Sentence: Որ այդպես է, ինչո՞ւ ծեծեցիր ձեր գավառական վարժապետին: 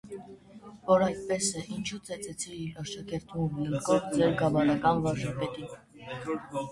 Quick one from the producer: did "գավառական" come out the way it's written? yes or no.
yes